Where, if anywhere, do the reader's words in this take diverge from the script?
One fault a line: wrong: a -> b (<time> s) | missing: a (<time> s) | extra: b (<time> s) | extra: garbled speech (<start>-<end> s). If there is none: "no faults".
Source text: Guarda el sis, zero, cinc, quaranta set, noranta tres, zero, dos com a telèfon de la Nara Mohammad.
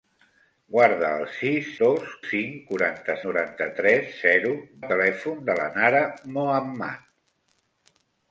wrong: zero -> dos (1.8 s)
missing: set (3.2 s)
missing: dos com (4.6 s)